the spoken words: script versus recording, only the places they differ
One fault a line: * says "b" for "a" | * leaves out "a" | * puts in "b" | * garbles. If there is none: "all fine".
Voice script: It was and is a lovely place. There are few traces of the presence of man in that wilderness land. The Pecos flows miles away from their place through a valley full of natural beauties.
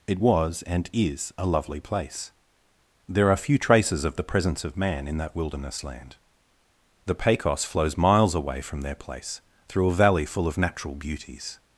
all fine